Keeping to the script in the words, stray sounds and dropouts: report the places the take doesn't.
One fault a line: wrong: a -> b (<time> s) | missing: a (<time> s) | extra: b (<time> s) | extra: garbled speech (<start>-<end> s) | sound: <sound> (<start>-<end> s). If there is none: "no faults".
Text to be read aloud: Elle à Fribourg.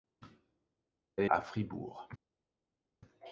no faults